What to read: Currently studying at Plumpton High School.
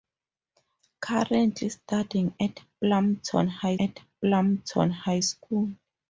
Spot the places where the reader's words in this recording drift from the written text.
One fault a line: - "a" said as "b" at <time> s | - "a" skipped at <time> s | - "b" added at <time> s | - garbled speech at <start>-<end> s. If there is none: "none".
- "at Plumpton High" added at 3.8 s